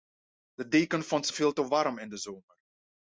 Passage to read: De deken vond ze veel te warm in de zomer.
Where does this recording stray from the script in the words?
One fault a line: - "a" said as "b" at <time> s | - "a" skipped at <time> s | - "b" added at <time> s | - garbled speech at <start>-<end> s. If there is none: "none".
none